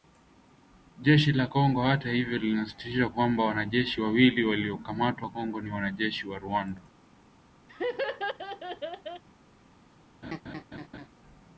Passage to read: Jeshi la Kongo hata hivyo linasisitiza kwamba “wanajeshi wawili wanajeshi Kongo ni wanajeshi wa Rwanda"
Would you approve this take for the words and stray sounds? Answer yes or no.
no